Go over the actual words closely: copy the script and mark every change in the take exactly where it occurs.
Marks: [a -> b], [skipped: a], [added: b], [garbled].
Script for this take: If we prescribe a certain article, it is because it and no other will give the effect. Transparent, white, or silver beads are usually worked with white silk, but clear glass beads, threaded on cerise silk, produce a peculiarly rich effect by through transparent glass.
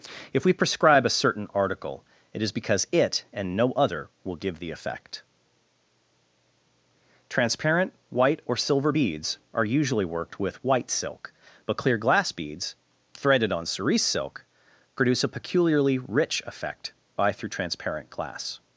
If we prescribe a certain article, it is because it and no other will give the effect. Transparent, white, or silver beads are usually worked with white silk, but clear glass beads, threaded on cerise silk, produce a peculiarly rich effect by through transparent glass.